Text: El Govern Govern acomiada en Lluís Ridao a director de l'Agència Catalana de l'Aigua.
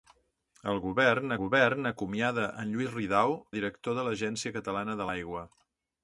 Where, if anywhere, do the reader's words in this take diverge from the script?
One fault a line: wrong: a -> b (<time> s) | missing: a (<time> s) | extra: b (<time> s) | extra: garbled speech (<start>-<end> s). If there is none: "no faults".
no faults